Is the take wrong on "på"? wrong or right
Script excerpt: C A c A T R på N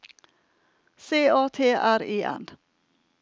wrong